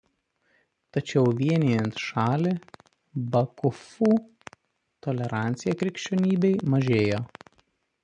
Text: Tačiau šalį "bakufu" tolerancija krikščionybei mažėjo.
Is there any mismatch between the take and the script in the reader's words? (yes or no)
yes